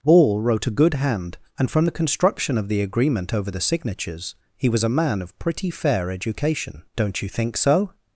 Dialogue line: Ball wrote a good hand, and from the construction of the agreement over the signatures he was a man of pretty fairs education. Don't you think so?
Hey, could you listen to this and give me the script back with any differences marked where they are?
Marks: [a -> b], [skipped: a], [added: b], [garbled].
Ball wrote a good hand, and from the construction of the agreement over the signatures he was a man of pretty [fairs -> fair] education. Don't you think so?